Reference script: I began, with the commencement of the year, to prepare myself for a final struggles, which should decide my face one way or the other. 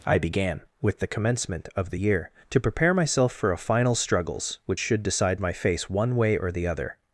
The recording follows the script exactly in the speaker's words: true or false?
true